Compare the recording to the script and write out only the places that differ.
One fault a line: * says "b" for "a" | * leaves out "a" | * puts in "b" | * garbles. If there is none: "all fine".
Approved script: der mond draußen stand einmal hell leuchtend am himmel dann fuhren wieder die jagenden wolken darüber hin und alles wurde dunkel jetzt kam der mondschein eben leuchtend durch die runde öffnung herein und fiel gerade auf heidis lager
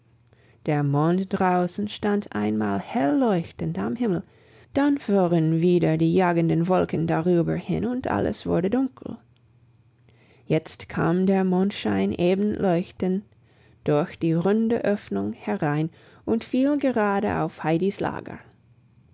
all fine